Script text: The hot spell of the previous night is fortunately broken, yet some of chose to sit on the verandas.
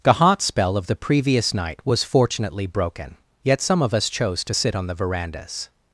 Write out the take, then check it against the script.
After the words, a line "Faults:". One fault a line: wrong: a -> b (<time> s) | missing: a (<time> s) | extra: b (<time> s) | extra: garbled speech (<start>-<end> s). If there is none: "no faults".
The hot spell of the previous night was fortunately broken, yet some of us chose to sit on the verandas.
Faults:
wrong: is -> was (1.9 s)
extra: us (3.9 s)